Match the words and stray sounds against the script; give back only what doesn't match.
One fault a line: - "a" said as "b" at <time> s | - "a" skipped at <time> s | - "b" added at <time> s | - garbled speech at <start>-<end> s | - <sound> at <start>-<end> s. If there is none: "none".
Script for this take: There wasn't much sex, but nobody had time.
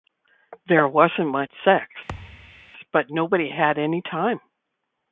- thud at 2.1-2.7 s
- "any" added at 3.8 s